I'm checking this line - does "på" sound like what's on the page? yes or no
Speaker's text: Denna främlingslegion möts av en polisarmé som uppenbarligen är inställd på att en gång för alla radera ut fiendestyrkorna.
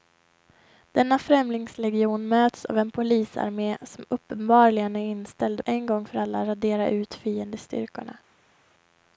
no